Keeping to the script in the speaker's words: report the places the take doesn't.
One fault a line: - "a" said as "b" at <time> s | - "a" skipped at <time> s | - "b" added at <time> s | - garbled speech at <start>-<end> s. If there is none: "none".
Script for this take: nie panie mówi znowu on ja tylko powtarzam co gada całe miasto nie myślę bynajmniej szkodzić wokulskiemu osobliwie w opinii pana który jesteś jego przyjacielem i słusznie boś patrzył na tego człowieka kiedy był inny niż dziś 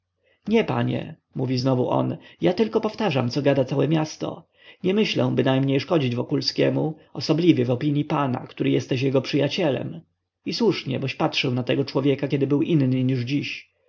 none